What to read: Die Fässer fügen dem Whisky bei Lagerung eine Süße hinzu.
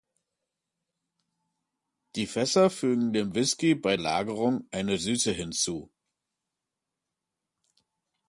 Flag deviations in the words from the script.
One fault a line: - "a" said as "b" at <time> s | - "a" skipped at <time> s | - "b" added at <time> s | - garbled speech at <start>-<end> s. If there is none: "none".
none